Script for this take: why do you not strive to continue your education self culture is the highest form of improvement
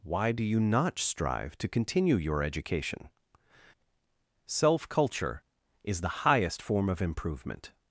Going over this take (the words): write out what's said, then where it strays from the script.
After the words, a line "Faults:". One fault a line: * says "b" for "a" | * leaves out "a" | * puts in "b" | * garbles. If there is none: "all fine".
why do you not strive to continue your education self culture is the highest form of improvement
Faults:
all fine